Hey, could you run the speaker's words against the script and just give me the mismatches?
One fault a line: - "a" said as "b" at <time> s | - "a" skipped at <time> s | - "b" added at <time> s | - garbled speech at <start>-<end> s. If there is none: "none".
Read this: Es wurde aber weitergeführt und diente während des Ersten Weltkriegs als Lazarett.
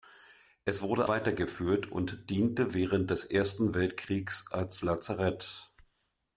- "aber" skipped at 1.1 s